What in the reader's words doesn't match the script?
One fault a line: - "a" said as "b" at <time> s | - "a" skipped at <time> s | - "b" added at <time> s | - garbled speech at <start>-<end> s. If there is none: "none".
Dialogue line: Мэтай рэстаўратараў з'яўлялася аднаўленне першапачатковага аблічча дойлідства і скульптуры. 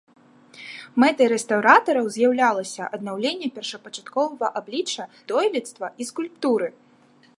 none